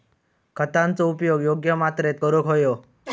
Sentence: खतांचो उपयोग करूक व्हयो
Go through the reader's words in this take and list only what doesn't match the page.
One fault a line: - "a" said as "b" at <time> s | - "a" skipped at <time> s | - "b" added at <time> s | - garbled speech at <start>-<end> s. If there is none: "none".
- "योग्य मात्रेत" added at 1.4 s